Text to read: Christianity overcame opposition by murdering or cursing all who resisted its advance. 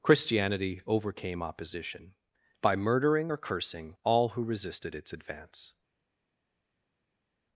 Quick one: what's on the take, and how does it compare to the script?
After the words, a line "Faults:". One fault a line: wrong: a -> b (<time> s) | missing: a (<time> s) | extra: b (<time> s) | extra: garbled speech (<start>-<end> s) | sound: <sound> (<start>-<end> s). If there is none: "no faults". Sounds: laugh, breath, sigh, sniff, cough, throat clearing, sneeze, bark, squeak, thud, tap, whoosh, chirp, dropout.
Christianity overcame opposition by murdering or cursing all who resisted its advance.
Faults:
no faults